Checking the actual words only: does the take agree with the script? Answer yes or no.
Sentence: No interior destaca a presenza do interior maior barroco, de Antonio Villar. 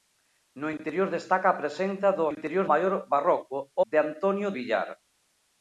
yes